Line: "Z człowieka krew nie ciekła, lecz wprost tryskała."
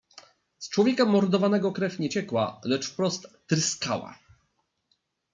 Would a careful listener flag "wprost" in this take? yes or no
no